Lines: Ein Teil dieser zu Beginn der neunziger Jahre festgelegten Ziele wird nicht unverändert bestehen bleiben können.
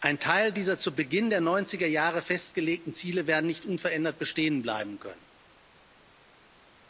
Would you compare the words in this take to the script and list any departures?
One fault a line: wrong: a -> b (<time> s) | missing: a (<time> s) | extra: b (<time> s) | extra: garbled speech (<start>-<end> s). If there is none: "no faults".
no faults